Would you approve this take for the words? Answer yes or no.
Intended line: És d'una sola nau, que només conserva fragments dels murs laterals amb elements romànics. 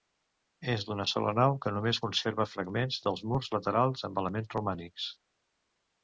yes